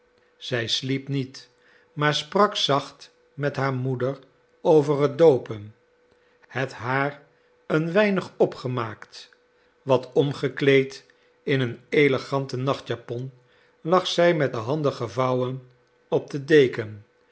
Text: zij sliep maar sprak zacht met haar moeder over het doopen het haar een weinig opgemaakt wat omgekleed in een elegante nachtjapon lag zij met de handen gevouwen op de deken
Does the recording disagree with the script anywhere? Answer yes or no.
yes